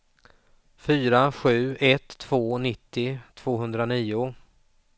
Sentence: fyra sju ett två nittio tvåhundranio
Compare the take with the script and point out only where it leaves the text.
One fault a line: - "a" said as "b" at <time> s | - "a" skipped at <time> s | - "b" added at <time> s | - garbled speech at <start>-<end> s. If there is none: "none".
none